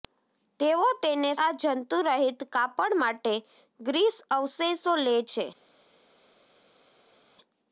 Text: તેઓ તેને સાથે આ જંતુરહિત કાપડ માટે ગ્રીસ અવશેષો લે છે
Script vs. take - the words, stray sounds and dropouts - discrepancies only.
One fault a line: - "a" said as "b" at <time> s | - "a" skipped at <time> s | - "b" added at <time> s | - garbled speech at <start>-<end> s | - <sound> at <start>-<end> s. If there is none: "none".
- "સાથે" skipped at 1.3 s